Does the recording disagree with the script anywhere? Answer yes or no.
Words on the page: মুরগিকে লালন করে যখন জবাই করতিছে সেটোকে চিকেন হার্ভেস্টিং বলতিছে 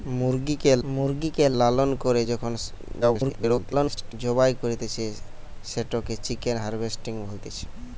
yes